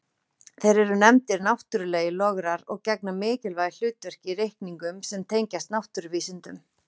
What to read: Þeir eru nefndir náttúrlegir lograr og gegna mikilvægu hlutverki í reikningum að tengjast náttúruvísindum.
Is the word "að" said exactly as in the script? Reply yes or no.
no